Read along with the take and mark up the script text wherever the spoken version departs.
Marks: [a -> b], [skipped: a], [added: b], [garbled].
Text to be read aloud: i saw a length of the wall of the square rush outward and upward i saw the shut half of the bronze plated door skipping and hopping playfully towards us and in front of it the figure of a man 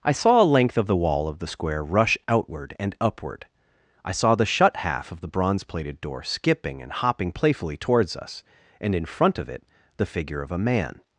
i saw a length of the wall of the square rush outward and upward i saw the shut half of the bronze plated door skipping and hopping playfully towards us and in front of it the figure of a man